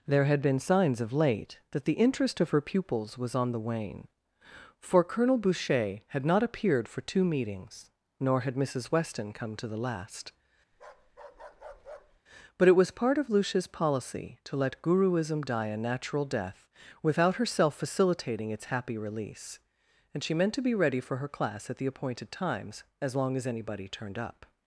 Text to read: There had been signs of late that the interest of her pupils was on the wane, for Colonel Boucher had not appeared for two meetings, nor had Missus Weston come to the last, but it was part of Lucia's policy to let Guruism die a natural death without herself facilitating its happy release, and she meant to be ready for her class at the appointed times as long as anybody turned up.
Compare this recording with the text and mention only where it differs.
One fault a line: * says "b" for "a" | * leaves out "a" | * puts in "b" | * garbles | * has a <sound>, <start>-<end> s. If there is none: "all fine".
* has a bark, 10.7-12.2 s